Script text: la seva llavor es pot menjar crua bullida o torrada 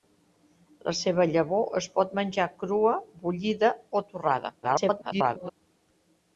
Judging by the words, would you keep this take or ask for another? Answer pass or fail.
fail